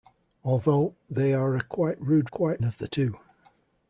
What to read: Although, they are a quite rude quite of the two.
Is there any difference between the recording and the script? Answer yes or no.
no